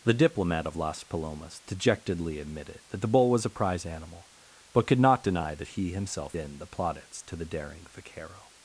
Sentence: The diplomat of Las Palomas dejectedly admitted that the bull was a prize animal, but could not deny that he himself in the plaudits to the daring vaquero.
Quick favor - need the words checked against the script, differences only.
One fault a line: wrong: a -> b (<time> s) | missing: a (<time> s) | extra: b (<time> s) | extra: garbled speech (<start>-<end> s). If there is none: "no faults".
no faults